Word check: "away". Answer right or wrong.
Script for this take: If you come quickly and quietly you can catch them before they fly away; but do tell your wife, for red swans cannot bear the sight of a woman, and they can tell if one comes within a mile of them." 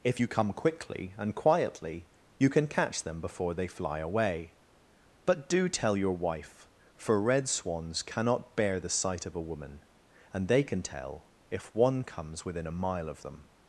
right